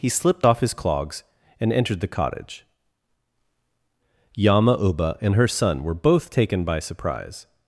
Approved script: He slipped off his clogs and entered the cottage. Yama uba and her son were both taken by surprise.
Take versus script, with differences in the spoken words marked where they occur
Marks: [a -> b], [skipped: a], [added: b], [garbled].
He slipped off his clogs and entered the cottage. Yama uba and her son were both taken by surprise.